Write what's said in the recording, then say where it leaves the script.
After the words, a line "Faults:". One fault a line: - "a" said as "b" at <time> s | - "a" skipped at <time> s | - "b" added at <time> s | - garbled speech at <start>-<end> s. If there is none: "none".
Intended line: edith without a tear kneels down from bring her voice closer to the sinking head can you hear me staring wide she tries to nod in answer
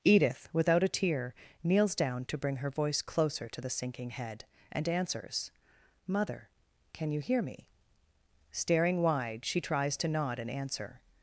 edith without a tear kneels down to bring her voice closer to the sinking head and answers mother can you hear me staring wide she tries to nod in answer
Faults:
- "from" said as "to" at 2.2 s
- "and answers mother" added at 4.7 s